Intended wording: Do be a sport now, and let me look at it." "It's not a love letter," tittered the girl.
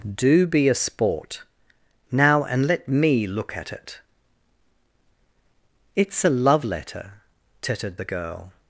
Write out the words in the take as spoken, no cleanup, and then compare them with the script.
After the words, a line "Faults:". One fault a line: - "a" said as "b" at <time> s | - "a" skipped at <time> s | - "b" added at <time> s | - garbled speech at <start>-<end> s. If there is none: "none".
Do be a sport now, and let me look at it." "It's a love letter," tittered the girl.
Faults:
- "not" skipped at 6.2 s